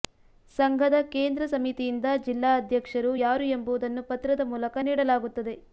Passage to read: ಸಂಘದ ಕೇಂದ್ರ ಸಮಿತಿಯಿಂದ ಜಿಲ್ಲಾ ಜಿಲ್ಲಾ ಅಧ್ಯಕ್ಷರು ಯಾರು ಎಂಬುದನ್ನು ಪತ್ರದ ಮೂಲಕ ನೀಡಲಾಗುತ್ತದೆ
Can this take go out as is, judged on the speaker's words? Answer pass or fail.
fail